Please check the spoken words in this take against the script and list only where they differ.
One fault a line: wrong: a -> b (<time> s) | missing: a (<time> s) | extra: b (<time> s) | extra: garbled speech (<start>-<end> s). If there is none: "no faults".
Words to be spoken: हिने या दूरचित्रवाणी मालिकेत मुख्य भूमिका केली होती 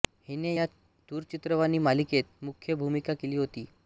no faults